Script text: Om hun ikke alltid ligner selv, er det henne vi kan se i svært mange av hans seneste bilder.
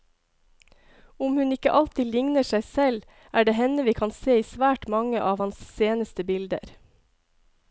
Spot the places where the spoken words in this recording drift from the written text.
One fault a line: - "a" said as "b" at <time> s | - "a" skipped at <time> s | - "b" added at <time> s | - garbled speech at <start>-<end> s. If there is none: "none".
- "seg" added at 2.5 s